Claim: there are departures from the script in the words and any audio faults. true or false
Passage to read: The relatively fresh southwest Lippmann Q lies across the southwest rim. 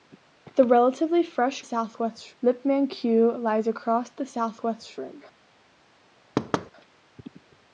true